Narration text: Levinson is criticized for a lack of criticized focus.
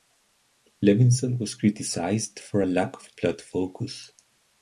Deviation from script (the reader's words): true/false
true